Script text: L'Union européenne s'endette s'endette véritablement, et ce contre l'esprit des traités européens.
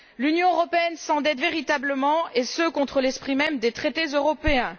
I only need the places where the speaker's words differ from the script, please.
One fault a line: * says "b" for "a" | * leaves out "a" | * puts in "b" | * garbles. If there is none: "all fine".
* leaves out "s'endette"
* puts in "même"